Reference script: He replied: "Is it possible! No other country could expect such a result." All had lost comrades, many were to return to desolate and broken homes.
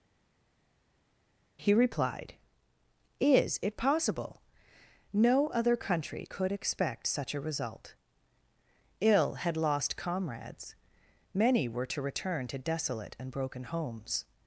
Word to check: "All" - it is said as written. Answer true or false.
false